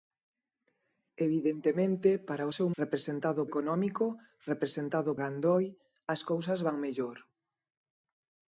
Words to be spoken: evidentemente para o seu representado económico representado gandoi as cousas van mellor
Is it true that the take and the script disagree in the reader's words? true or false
false